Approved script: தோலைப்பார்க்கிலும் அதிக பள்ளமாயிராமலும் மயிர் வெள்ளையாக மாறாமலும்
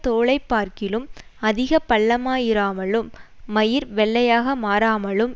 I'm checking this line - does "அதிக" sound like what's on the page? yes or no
yes